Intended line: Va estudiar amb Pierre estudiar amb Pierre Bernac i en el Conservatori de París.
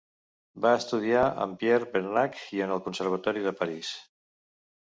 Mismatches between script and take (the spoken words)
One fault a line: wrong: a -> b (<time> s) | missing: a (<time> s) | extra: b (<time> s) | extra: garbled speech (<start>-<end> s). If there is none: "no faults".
missing: estudiar amb Pierre (1.9 s)